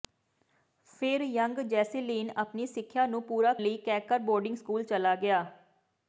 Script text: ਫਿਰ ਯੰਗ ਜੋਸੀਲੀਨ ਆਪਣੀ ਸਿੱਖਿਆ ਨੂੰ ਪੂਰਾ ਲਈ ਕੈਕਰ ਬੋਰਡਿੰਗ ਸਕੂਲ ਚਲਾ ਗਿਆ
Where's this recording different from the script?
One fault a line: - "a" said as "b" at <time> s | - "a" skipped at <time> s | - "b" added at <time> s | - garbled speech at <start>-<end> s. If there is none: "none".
none